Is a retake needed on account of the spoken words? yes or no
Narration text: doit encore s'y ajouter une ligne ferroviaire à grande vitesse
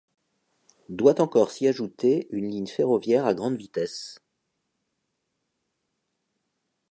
no